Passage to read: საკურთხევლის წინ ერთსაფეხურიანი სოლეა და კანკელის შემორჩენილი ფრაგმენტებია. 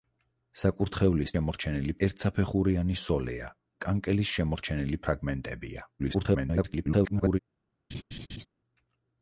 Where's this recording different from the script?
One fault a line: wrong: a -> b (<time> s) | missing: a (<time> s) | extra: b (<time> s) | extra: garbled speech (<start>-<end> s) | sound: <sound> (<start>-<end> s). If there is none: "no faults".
wrong: წინ -> შემორჩენილი (1.3 s)
missing: და (3.5 s)
extra: garbled speech (6.0-7.4 s)
sound: laugh (7.9-8.5 s)